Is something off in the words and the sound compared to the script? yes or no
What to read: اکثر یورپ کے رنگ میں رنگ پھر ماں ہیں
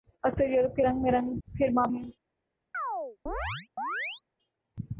yes